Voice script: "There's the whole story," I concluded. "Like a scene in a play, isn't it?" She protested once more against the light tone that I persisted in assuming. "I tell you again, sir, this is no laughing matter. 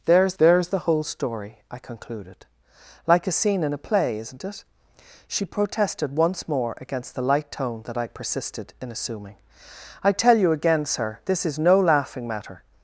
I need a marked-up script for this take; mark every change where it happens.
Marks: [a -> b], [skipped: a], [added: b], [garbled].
"There's [added: there's] the whole story," I concluded. "Like a scene in a play, isn't it?" She protested once more against the light tone that I persisted in assuming. "I tell you again, sir, this is no laughing matter.